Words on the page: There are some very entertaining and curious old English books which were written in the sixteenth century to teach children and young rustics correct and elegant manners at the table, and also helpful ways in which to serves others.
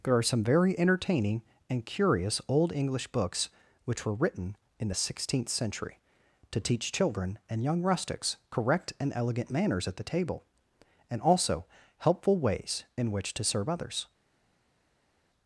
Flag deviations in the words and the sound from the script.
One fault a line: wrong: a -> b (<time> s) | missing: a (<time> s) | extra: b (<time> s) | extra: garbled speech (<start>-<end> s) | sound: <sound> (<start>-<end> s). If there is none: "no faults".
wrong: serves -> serve (13.4 s)